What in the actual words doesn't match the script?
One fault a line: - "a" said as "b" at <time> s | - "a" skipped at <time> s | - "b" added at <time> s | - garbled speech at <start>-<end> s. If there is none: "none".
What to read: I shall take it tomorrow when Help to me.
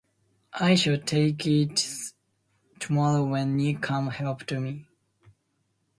- "Nick comes" added at 3.6 s